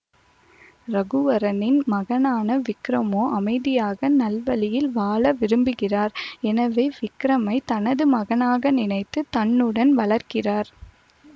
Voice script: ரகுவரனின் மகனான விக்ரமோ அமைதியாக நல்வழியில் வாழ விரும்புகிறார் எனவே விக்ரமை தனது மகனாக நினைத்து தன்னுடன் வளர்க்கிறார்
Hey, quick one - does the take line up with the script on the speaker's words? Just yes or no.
yes